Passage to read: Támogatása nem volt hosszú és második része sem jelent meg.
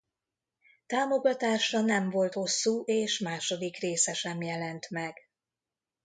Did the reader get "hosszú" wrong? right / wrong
right